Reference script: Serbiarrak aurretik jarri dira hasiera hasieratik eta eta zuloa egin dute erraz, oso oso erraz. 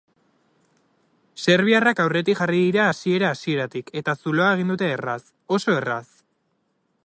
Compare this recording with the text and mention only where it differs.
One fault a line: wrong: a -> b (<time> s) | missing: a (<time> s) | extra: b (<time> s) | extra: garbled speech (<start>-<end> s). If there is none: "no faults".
missing: eta (4.2 s)
missing: oso (5.8 s)